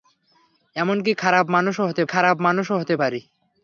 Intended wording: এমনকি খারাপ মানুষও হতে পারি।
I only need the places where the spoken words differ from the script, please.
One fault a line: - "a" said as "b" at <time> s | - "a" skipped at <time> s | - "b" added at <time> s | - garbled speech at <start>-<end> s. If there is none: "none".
- "খারাপ মানুষও হতে" added at 2.0 s